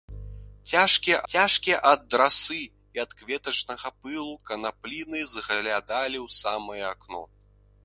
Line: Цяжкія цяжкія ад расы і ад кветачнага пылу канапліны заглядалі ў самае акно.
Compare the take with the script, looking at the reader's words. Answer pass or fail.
pass